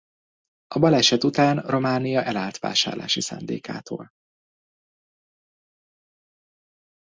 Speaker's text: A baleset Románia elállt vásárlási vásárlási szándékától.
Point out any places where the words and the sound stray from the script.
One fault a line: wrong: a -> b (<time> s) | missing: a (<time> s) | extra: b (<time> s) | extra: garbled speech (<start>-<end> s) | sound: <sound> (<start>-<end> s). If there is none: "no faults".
extra: után (1.2 s)
missing: vásárlási (3.2 s)